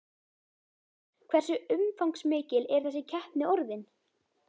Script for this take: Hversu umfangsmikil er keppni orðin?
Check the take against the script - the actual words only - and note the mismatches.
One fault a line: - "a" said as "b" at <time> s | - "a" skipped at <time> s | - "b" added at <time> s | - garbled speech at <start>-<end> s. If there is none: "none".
- "þessi" added at 2.9 s